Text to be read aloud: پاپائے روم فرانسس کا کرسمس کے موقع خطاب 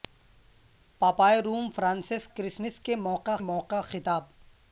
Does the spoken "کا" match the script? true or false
false